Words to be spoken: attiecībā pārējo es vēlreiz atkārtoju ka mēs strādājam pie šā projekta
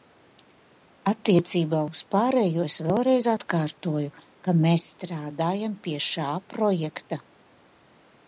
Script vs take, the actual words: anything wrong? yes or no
yes